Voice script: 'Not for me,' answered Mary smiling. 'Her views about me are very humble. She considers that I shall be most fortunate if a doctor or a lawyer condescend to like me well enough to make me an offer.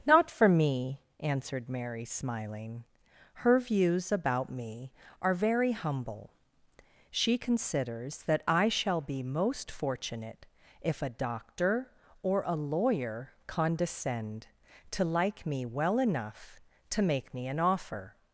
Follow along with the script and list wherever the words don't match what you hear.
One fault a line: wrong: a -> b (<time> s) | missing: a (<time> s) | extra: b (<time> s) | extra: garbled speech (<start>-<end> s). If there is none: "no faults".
no faults